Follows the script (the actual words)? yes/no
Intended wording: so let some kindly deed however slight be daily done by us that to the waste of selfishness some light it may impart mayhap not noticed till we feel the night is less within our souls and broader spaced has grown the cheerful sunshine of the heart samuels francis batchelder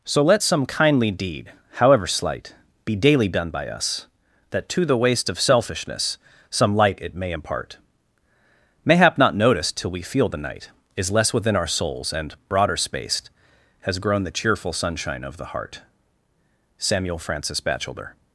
no